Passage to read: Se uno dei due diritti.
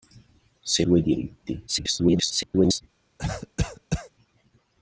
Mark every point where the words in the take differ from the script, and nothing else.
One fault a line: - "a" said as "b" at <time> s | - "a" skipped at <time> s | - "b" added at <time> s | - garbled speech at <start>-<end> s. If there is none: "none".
- "uno dei" skipped at 0.8 s
- garbled speech at 1.7-2.8 s